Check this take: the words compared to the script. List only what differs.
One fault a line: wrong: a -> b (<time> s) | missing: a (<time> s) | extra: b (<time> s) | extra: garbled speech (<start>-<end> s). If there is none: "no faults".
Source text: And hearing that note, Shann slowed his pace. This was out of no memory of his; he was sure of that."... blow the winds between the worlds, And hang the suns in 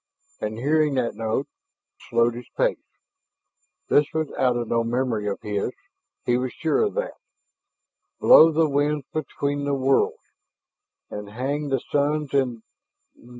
missing: Shann (1.4 s)